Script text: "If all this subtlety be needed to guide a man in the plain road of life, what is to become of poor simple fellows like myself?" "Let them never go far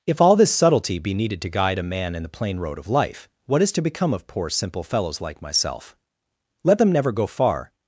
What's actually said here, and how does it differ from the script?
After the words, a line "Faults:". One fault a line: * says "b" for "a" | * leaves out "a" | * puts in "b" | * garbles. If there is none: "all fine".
"If all this subtlety be needed to guide a man in the plain road of life, what is to become of poor simple fellows like myself?" "Let them never go far
Faults:
all fine